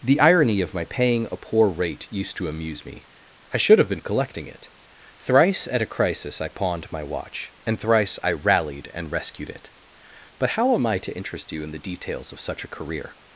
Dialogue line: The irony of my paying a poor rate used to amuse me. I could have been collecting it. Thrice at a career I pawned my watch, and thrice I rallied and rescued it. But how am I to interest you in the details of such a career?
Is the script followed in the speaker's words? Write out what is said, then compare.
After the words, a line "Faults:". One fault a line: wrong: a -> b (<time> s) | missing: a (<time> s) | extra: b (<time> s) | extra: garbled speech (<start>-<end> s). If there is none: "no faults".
The irony of my paying a poor rate used to amuse me. I should have been collecting it. Thrice at a crisis I pawned my watch, and thrice I rallied and rescued it. But how am I to interest you in the details of such a career?
Faults:
wrong: could -> should (3.6 s)
wrong: career -> crisis (5.9 s)